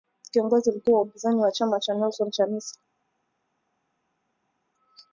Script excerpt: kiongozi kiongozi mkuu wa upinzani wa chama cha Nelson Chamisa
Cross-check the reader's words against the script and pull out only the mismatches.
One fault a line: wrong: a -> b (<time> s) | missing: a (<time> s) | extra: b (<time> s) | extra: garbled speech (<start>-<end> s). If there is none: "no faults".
missing: kiongozi (0.7 s)